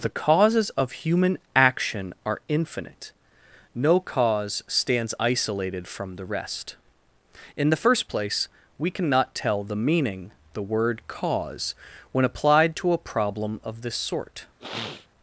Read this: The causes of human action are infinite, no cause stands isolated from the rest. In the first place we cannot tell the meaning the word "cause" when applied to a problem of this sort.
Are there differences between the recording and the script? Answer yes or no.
no